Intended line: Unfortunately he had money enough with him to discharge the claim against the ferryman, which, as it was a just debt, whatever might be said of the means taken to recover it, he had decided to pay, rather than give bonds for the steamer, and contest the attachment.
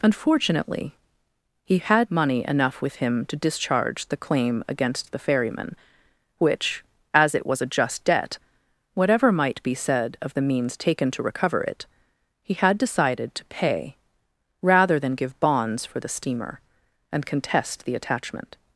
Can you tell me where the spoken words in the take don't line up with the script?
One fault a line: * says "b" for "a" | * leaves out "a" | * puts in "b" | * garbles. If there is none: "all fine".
all fine